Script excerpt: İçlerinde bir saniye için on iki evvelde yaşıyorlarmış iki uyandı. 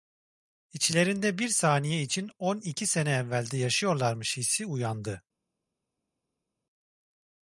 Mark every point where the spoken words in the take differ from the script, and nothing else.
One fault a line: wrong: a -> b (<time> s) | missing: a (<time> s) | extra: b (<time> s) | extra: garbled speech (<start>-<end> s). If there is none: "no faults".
extra: sene (2.9 s)
wrong: iki -> hissi (4.4 s)